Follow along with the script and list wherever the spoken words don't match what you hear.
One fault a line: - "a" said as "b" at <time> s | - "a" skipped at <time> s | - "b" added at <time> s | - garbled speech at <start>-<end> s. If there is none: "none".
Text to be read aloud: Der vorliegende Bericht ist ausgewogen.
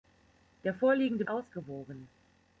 - "Bericht ist" skipped at 1.2 s